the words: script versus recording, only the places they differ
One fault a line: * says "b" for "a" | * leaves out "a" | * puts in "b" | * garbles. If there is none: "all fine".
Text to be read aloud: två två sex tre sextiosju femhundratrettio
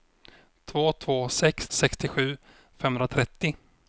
* leaves out "tre"